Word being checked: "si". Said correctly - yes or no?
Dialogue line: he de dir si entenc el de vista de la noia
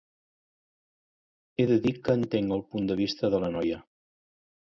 no